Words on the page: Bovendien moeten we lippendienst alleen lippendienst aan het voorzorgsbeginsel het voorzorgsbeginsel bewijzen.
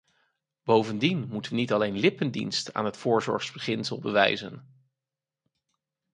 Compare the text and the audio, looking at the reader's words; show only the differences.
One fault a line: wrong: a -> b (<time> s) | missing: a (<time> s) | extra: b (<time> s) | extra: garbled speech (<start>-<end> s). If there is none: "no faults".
wrong: lippendienst -> niet (1.6 s)
missing: het voorzorgsbeginsel (4.0 s)